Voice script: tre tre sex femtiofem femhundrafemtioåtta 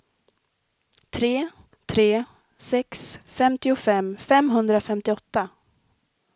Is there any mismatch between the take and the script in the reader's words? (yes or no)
no